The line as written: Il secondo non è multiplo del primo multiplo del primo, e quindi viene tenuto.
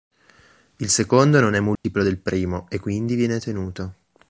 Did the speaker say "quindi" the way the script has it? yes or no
yes